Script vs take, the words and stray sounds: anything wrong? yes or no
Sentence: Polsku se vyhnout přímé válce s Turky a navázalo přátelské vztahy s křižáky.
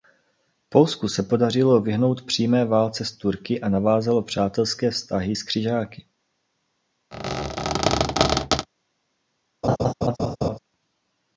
yes